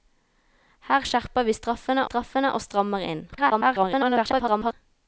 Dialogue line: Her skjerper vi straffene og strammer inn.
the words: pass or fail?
fail